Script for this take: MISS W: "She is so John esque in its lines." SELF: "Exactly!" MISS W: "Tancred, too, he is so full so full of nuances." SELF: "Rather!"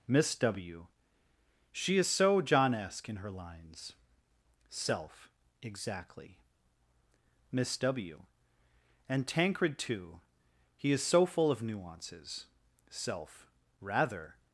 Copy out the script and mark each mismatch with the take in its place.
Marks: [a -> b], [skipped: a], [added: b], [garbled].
MISS W: "She is so John esque in [its -> her] lines." SELF: "Exactly!" MISS W: [added: And] "Tancred, too, he is so full [skipped: so full] of nuances." SELF: "Rather!"